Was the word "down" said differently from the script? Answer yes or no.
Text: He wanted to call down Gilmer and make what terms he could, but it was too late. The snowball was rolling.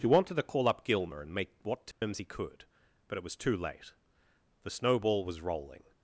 yes